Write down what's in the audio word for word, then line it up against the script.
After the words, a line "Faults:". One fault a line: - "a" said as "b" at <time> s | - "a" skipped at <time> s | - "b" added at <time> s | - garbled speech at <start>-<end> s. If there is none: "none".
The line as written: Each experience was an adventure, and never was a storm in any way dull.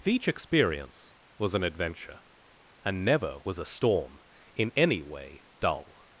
Each experience was an adventure, and never was a storm in any way dull.
Faults:
none